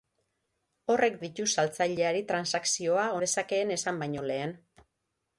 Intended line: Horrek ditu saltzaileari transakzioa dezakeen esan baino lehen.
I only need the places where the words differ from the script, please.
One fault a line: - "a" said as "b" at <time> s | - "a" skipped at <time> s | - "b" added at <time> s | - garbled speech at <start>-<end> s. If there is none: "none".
none